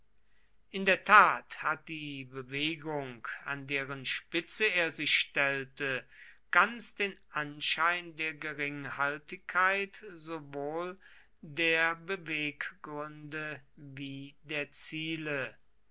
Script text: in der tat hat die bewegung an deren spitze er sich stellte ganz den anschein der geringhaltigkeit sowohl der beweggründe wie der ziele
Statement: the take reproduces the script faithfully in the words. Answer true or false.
true